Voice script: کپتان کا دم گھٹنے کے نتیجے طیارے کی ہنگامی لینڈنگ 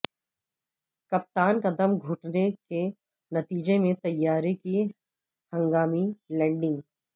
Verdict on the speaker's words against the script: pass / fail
fail